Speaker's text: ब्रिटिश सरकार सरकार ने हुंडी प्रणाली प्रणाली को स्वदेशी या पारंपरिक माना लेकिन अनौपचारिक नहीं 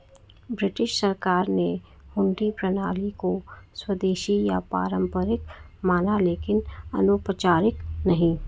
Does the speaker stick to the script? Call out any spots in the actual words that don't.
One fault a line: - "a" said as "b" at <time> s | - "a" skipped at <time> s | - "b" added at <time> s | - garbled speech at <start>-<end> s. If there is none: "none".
- "सरकार" skipped at 1.5 s
- "प्रणाली" skipped at 3.1 s